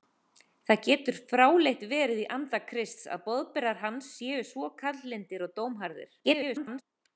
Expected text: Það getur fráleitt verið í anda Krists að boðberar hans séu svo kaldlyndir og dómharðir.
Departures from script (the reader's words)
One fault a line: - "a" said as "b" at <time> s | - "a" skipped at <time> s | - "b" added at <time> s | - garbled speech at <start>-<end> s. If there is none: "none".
- garbled speech at 6.2-6.8 s